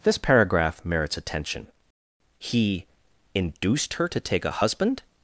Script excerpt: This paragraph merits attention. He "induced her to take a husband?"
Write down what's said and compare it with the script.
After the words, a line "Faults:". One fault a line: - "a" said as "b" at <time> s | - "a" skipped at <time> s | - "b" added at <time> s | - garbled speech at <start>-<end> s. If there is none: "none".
This paragraph merits attention. He "induced her to take a husband?"
Faults:
none